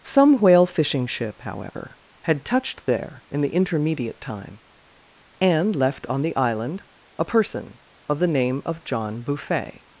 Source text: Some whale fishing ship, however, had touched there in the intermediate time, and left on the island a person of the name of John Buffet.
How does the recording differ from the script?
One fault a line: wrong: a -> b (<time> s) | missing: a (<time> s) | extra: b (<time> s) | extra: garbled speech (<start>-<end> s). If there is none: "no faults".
no faults